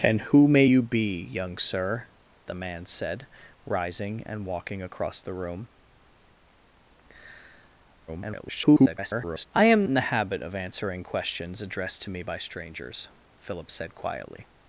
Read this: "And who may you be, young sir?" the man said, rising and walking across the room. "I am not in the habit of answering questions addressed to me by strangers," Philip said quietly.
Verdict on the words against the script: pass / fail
fail